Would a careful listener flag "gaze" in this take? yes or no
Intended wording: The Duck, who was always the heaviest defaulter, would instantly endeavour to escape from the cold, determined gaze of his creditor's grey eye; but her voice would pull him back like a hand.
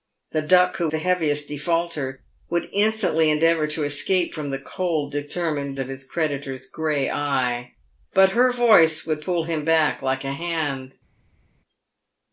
yes